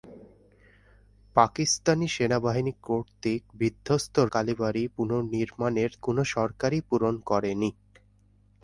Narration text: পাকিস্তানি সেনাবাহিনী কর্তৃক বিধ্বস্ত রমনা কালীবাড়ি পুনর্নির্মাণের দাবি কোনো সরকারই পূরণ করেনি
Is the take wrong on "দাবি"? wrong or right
wrong